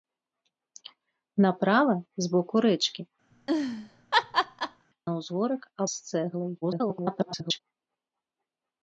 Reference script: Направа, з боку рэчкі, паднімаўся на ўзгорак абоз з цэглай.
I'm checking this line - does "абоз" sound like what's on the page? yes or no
no